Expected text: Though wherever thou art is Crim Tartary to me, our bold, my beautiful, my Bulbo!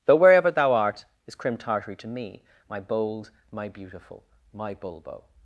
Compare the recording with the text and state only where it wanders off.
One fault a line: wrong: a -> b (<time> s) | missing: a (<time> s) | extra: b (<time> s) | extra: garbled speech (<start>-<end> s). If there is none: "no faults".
wrong: our -> my (2.7 s)